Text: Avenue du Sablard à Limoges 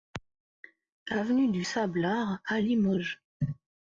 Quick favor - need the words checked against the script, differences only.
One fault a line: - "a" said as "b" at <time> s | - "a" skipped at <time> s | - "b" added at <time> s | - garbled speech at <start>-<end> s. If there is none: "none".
none